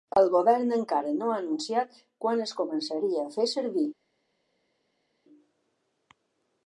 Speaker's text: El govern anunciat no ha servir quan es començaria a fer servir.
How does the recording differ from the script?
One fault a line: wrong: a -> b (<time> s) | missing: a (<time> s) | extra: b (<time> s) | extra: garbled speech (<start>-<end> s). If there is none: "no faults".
wrong: anunciat -> encara (0.8 s)
wrong: servir -> anunciat (1.4 s)